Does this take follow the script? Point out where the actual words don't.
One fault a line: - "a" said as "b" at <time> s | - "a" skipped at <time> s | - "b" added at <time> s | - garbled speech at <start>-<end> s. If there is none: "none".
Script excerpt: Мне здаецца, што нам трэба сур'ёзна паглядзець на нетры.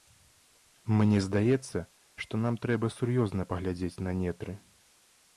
none